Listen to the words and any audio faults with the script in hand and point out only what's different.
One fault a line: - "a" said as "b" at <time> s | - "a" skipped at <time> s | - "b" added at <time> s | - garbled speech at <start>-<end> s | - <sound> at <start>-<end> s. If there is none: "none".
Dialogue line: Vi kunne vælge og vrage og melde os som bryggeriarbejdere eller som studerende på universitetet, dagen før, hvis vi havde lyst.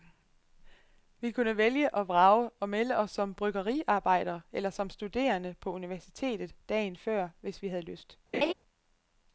- laugh at 8.3-8.5 s